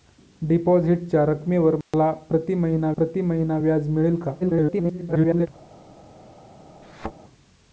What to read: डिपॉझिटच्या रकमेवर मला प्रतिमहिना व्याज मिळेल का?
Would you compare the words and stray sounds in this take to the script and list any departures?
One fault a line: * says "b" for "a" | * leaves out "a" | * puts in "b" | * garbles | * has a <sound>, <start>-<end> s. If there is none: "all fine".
* has a dropout, 1.8-1.9 s
* puts in "प्रतिमहिना"
* garbles
* has a thud, 6.8-7.1 s